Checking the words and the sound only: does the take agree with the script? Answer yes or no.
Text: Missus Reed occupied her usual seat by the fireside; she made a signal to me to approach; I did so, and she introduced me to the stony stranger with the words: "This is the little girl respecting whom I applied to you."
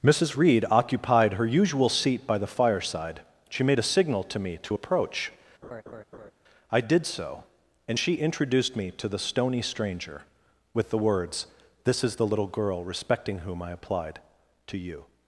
no